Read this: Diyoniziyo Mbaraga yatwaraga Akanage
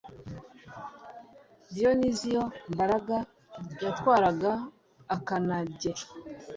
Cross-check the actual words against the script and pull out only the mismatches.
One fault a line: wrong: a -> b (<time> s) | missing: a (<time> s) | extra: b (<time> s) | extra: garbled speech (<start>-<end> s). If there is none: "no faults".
no faults